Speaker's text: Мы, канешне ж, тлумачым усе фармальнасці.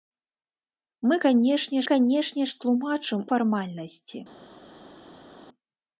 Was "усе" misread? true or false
true